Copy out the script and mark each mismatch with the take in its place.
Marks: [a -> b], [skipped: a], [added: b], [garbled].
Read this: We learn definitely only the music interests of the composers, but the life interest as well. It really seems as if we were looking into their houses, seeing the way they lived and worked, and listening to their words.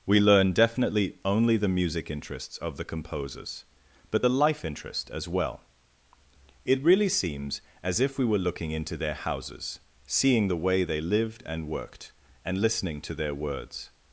We learn definitely only the music interests of the composers, but the life interest as well. It really seems as if we were looking into their houses, seeing the way they lived and worked, and listening to their words.